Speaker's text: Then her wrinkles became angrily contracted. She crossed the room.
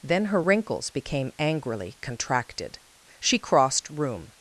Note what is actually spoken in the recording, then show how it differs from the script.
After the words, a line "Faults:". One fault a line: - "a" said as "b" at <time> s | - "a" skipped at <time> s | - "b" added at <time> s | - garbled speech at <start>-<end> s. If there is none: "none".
Then her wrinkles became angrily contracted. She crossed room.
Faults:
- "the" skipped at 3.9 s